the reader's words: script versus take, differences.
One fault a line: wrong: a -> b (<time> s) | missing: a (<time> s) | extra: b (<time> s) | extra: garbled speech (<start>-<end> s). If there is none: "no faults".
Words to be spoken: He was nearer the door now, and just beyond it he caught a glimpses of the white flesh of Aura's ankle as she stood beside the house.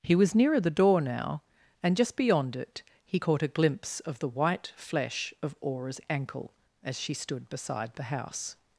wrong: glimpses -> glimpse (3.5 s)